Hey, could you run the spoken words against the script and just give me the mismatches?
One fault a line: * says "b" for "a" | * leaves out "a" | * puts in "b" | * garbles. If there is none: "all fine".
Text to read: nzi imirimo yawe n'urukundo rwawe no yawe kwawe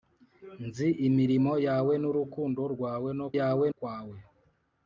all fine